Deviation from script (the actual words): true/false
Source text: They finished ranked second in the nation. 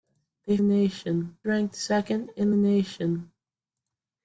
true